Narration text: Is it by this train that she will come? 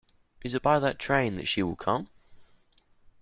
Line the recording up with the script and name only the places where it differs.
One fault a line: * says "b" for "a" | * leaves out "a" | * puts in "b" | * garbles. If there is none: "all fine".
* says "that" for "this"